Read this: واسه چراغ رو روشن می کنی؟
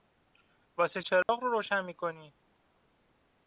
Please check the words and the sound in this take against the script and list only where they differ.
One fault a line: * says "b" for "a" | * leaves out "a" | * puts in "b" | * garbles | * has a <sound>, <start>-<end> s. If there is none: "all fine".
* has a dropout, 1.2-1.3 s